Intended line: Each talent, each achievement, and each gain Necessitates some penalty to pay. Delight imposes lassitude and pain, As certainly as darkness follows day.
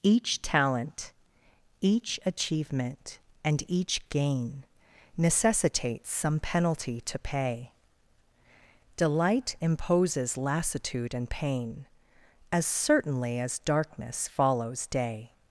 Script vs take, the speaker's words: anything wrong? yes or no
no